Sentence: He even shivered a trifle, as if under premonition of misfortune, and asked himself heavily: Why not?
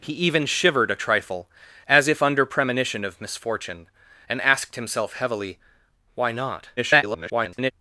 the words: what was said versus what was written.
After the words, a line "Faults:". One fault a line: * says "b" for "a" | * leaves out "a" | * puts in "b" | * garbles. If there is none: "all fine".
He even shivered a trifle, as if under premonition of misfortune, and asked himself heavily: Why not? [garbled]
Faults:
* garbles